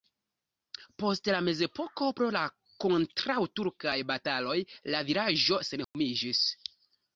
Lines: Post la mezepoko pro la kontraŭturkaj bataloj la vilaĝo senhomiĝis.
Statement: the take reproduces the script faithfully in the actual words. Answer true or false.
true